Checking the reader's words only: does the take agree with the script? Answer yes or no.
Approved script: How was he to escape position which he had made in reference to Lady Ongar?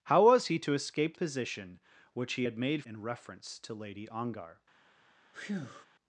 yes